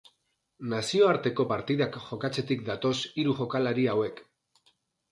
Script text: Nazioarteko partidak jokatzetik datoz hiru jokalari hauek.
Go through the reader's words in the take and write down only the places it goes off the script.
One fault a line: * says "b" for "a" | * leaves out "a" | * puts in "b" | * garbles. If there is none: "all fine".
all fine